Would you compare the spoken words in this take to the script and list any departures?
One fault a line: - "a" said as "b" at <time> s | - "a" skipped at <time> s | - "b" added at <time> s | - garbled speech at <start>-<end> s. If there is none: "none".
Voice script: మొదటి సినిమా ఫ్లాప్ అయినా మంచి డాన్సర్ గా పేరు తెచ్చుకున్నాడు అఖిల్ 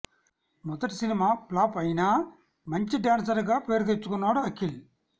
none